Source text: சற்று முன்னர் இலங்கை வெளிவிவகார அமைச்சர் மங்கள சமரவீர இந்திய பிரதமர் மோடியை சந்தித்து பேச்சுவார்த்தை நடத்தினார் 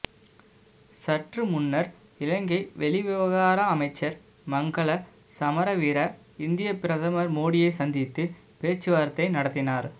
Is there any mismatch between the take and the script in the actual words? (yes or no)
no